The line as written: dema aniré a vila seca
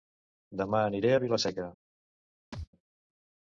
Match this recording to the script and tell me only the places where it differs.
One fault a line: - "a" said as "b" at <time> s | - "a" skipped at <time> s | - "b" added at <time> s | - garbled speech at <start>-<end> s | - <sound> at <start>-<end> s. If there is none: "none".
- thud at 2.5-2.7 s